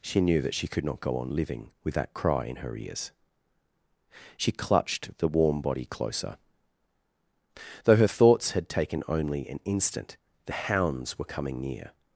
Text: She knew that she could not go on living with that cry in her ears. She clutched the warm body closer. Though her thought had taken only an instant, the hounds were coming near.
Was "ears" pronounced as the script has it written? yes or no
yes